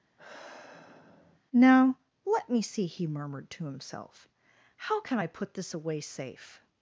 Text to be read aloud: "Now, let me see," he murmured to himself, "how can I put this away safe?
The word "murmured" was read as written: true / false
true